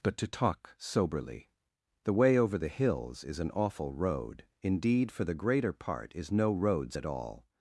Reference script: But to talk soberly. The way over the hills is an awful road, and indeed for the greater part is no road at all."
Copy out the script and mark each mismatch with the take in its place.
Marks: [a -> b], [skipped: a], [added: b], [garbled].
But to talk soberly. The way over the hills is an awful road, [skipped: and] indeed for the greater part is no [road -> roads] at all."